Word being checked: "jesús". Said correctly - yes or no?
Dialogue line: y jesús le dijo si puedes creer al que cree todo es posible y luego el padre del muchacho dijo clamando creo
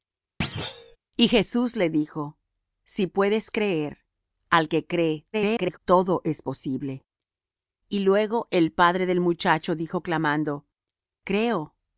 yes